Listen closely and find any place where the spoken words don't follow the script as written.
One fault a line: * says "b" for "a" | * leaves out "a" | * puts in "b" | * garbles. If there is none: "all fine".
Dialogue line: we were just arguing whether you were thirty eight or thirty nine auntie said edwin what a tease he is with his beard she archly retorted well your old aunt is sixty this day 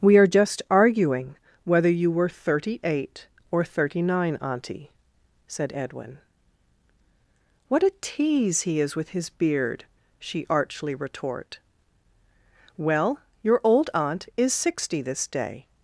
* says "are" for "were"
* says "retort" for "retorted"